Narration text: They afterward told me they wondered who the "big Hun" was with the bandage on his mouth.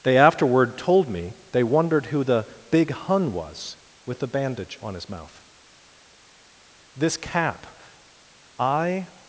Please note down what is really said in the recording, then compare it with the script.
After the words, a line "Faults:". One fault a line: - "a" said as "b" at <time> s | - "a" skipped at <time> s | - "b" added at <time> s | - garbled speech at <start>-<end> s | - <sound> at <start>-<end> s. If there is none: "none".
They afterward told me they wondered who the "big Hun" was with the bandage on his mouth. This cap I
Faults:
- "This cap I" added at 7.0 s